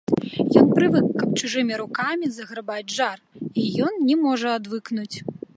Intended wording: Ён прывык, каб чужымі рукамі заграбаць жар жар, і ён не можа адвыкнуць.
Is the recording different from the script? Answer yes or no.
yes